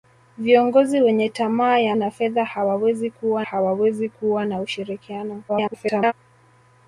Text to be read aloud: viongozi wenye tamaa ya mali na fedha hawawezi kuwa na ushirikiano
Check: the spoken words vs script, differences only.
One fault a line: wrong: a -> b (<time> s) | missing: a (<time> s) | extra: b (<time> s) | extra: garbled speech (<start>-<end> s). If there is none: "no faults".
missing: mali (1.9 s)
extra: hawawezi kuwa (3.4 s)
extra: garbled speech (5.5-6.1 s)